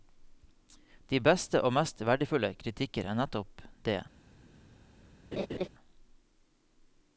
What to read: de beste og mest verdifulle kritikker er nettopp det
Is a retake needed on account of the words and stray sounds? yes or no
yes